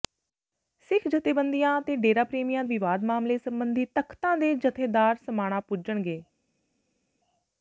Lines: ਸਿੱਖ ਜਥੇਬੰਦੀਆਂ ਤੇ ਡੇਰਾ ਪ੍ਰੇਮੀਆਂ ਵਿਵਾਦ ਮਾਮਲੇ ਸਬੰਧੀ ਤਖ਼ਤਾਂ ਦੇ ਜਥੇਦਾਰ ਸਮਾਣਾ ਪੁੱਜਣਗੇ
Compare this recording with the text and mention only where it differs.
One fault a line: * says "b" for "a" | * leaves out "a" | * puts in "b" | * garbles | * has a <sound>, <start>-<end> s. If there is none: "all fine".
all fine